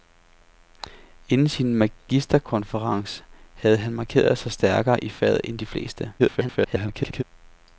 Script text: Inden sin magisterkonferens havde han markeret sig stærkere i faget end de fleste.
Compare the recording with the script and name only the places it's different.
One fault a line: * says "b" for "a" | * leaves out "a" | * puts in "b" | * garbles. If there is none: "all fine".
* garbles